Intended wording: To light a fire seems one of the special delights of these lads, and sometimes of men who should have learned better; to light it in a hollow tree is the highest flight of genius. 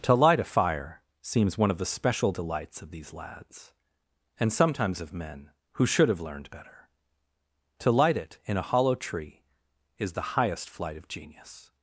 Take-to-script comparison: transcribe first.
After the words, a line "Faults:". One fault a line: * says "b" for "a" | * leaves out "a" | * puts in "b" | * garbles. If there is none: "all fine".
To light a fire seems one of the special delights of these lads, and sometimes of men who should have learned better; to light it in a hollow tree is the highest flight of genius.
Faults:
all fine